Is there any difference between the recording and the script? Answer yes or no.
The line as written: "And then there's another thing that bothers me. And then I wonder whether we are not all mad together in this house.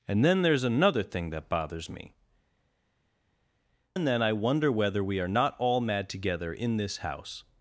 no